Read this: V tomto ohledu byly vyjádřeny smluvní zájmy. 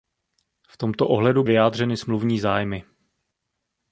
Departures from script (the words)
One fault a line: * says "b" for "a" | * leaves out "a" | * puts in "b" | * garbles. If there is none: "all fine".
* leaves out "byly"